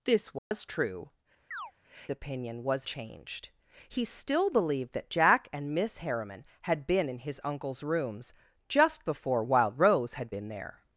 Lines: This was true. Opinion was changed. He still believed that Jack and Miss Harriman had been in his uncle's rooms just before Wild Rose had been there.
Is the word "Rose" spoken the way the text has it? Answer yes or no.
yes